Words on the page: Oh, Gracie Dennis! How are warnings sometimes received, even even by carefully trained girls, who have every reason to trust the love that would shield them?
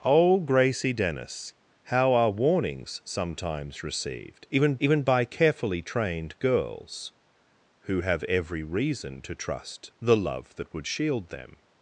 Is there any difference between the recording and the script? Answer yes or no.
no